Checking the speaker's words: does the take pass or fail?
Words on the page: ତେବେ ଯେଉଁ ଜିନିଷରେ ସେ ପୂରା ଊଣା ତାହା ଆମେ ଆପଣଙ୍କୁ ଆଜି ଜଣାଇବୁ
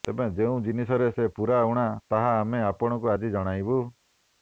pass